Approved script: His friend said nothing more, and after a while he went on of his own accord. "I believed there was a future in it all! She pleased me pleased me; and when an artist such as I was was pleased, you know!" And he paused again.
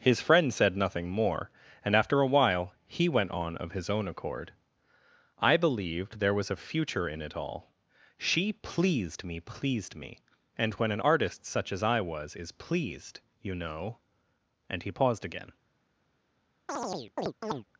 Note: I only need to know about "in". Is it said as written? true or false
true